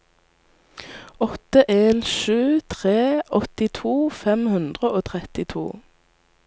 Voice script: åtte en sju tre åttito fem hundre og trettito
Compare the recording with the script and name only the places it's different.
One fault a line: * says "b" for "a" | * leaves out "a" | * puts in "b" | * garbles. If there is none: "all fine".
all fine